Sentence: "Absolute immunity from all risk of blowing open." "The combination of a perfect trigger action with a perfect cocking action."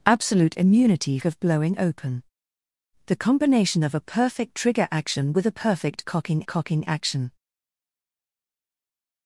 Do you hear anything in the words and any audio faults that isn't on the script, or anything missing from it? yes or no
yes